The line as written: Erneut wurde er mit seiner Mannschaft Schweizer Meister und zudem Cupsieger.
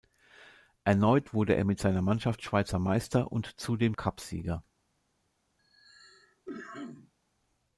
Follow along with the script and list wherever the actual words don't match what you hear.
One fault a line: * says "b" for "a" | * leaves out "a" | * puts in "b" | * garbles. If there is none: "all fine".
all fine